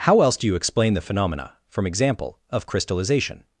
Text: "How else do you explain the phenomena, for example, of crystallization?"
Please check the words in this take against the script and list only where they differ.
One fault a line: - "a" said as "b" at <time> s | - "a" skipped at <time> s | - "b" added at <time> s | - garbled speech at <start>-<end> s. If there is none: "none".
- "for" said as "from" at 1.7 s